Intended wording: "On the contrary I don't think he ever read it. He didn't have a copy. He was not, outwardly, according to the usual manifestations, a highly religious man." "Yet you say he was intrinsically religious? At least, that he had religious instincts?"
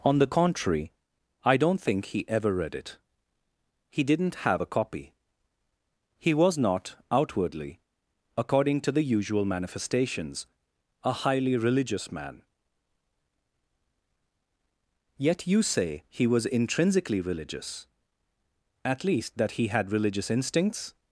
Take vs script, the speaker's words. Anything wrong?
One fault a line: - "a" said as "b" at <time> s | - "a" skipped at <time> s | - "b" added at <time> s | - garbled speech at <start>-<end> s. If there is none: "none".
none